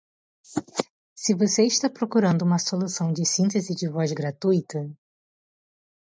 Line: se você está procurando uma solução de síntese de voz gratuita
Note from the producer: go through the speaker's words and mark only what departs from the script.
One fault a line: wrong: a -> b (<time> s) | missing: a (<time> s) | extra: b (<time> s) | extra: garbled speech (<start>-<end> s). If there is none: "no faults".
no faults